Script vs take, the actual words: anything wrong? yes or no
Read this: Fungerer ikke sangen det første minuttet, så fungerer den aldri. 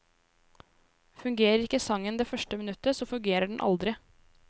no